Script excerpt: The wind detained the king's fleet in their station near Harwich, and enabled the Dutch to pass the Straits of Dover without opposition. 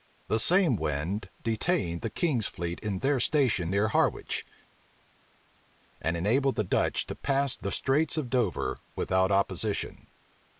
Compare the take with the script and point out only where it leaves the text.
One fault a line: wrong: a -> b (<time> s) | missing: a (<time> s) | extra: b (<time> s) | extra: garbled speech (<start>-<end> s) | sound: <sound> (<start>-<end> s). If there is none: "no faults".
extra: same (0.4 s)